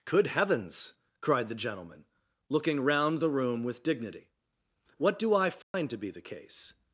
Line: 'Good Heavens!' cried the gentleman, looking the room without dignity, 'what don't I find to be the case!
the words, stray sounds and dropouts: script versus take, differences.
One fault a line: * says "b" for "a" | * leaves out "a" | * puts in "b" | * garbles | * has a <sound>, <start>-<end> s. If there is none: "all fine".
* puts in "round"
* says "with" for "without"
* says "do" for "don't"
* has a dropout, 5.6-5.7 s